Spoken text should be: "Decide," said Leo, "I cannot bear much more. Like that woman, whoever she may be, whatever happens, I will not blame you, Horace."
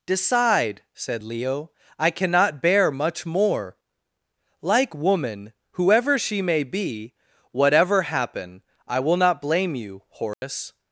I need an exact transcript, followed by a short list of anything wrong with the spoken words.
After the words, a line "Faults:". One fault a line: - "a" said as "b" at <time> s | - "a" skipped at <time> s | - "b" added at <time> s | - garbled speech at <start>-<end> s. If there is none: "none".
"Decide," said Leo, "I cannot bear much more. Like woman, whoever she may be, whatever happen, I will not blame you, Horace."
Faults:
- "that" skipped at 5.0 s
- "happens" said as "happen" at 8.0 s